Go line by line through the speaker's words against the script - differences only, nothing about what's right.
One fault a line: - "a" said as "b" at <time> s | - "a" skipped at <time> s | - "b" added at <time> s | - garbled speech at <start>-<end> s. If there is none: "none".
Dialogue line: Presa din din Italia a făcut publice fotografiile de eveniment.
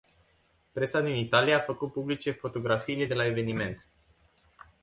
- "din" skipped at 1.1 s
- "la" added at 3.1 s